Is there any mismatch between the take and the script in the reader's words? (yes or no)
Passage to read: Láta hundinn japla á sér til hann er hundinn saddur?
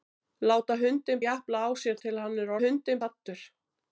no